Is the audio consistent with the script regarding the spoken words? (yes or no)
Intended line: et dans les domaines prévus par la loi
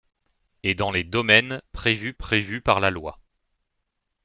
no